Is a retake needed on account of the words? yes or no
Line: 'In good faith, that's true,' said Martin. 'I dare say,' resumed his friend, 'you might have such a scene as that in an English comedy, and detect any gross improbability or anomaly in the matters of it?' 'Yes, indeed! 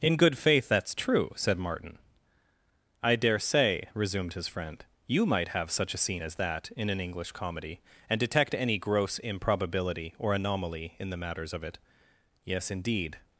no